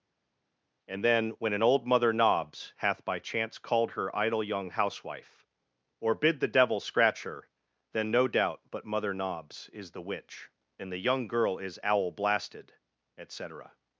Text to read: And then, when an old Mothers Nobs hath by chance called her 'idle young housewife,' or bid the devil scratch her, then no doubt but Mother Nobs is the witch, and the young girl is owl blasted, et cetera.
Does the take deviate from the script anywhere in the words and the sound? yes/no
yes